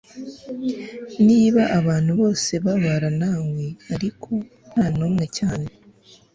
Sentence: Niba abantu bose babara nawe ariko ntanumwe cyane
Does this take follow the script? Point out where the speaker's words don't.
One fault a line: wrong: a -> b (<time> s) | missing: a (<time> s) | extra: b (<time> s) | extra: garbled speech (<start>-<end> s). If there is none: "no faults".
no faults